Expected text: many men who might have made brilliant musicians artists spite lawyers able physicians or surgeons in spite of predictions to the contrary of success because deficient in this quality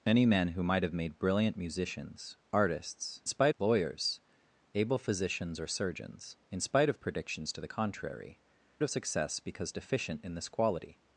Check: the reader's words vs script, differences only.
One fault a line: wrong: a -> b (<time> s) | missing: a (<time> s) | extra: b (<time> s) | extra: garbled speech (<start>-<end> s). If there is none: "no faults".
no faults